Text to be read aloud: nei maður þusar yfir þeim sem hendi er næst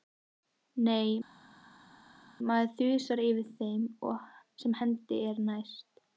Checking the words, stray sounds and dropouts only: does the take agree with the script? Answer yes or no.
yes